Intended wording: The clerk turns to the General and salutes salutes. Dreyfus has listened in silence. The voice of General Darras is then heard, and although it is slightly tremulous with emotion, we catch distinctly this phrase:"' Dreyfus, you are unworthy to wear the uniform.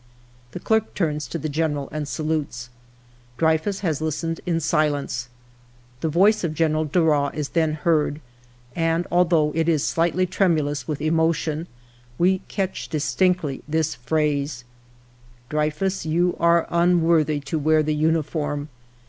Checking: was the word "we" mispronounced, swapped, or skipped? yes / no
no